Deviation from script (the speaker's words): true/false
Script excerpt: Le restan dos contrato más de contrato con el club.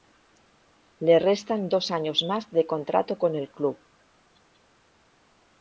true